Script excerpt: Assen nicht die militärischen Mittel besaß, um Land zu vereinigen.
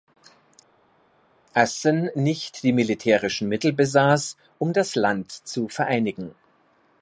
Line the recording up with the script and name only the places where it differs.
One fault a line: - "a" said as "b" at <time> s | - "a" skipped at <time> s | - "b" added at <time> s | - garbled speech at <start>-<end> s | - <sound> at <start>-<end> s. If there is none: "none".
- "das" added at 4.7 s